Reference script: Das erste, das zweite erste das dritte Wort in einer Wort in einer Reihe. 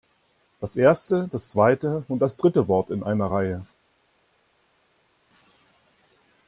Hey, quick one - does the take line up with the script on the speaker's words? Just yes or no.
no